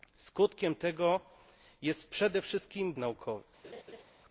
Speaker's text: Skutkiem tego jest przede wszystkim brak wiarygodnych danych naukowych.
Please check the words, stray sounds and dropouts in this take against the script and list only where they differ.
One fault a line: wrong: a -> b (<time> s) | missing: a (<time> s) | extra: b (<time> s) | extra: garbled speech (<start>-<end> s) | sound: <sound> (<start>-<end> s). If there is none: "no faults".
missing: brak wiarygodnych danych (2.9 s)
sound: laugh (3.6-4.0 s)